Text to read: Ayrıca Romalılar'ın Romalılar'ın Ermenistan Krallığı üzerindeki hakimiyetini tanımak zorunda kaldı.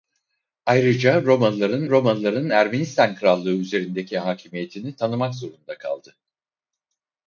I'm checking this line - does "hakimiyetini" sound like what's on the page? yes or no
yes